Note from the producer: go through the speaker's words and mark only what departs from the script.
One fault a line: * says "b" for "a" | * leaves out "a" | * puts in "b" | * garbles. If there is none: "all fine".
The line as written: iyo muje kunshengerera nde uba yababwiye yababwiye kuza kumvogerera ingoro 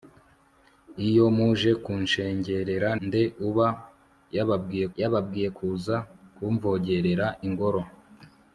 all fine